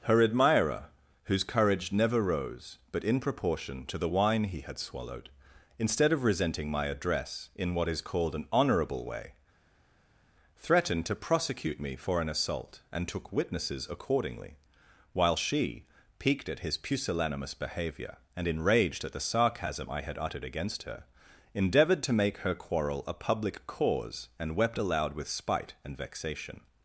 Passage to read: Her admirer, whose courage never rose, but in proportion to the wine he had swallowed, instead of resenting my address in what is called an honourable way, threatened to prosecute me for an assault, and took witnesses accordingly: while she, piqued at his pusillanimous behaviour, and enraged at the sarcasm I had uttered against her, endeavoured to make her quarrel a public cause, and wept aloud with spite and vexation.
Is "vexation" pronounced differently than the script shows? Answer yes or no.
no